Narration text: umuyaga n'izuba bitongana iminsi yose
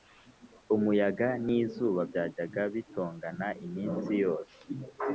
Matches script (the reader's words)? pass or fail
fail